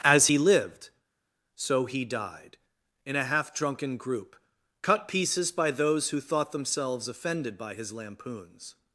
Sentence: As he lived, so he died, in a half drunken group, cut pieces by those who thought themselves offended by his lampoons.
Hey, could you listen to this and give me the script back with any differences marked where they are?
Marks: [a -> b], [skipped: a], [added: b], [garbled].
As he lived, so he died, in a half drunken group, cut pieces by those who thought themselves offended by his lampoons.